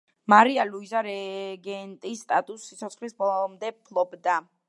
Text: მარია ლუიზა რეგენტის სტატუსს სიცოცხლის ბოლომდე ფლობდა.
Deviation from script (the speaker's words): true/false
false